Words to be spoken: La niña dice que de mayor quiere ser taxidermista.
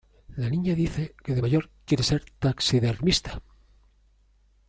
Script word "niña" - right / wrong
right